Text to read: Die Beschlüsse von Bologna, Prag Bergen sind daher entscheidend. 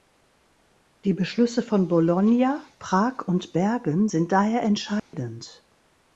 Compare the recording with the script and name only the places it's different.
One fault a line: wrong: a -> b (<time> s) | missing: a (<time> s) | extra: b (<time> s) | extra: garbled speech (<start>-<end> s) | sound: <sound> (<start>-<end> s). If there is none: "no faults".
extra: und (3.3 s)
sound: dropout (5.0-5.1 s)